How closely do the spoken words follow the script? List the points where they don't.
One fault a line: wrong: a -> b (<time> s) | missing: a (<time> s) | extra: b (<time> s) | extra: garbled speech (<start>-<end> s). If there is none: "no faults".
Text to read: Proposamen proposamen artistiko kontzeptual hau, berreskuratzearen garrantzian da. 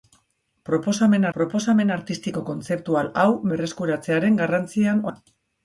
no faults